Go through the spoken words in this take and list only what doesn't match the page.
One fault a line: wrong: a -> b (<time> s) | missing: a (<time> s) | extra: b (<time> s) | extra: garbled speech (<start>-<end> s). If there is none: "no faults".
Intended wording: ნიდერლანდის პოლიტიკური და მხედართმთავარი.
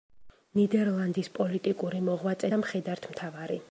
extra: მოღვაწე (2.1 s)